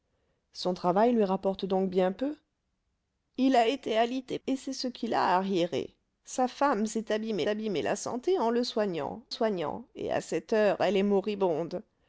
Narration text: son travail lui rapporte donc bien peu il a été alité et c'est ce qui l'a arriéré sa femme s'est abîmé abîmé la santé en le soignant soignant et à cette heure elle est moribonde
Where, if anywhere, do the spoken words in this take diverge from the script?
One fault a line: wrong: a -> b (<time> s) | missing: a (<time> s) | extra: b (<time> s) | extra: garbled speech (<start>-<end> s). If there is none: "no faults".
no faults